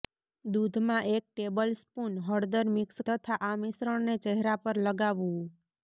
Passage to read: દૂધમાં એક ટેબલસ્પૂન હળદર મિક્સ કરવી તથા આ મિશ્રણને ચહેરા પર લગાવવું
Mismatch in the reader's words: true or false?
true